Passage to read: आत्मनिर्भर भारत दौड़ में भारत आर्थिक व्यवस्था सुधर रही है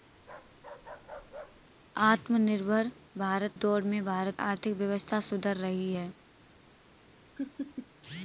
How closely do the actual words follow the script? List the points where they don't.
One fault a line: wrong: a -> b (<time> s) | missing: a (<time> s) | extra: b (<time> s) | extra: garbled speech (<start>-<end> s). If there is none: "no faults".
no faults